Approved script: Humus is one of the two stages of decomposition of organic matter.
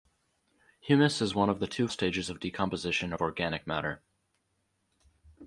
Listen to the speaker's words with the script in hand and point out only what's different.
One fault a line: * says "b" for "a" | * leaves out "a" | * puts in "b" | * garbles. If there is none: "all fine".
all fine